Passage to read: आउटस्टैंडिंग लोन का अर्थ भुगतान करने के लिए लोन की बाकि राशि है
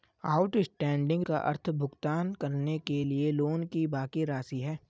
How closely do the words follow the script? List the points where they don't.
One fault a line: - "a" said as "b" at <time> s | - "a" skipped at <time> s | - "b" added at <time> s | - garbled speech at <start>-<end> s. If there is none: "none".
- "लोन" skipped at 1.2 s